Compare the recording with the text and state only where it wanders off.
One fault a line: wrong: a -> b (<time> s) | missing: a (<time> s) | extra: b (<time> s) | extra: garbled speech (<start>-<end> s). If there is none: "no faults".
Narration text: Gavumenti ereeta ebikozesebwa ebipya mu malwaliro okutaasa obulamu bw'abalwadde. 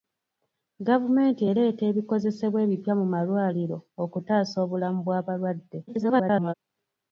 extra: garbled speech (5.9-6.5 s)